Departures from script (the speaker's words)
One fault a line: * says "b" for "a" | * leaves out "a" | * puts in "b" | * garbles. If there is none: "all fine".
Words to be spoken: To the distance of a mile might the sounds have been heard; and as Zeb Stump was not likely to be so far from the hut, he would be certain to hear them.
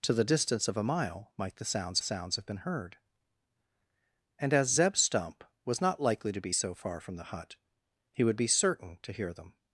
* puts in "sounds"